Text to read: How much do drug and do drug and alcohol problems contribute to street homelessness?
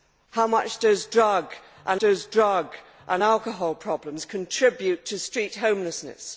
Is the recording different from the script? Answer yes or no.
no